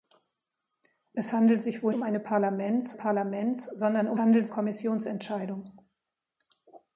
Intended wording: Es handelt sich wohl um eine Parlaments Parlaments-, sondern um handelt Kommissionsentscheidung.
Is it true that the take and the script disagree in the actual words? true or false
false